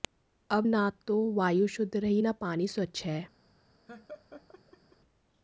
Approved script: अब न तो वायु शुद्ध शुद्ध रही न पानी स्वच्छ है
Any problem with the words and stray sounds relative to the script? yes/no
yes